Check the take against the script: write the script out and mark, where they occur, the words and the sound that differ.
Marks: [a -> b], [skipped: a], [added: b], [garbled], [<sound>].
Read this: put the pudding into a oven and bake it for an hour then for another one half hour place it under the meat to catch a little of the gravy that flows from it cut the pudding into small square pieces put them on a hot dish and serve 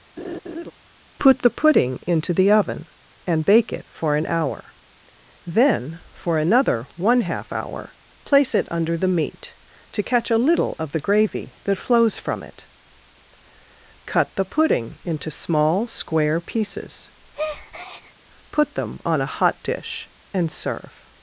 [laugh] put the pudding into [a -> the] oven and bake it for an hour then for another one half hour place it under the meat to catch a little of the gravy that flows from it cut the pudding into small square pieces [breath] put them on a hot dish and serve